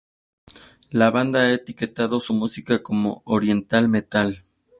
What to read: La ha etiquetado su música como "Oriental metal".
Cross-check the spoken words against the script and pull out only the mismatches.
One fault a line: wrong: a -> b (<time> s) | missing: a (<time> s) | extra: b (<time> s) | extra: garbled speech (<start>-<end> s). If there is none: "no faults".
extra: banda (1.1 s)